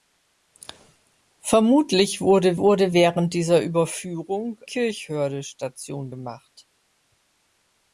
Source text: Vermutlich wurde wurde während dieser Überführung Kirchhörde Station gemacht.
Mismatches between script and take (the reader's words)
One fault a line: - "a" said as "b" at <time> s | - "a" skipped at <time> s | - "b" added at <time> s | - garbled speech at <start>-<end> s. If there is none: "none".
none